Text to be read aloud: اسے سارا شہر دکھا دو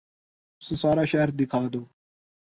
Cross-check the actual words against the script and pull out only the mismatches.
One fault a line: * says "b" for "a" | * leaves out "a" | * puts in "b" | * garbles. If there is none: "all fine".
all fine